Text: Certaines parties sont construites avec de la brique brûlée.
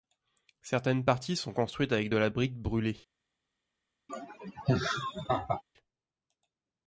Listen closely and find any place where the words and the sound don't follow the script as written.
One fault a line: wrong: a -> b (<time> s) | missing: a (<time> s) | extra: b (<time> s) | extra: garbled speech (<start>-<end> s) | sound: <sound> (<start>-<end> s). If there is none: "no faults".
sound: laugh (4.1-5.6 s)